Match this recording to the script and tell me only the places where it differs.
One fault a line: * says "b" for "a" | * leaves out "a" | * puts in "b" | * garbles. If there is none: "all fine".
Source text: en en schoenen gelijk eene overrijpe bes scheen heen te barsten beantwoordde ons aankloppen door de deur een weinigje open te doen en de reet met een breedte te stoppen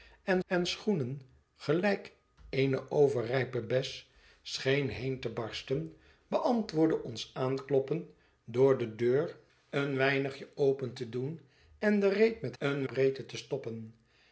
all fine